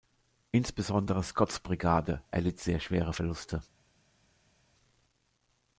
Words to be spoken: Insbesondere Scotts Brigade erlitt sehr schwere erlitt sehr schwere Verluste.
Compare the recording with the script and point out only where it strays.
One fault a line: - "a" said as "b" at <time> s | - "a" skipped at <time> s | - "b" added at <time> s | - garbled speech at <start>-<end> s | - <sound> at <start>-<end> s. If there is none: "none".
- "erlitt sehr schwere" skipped at 3.1 s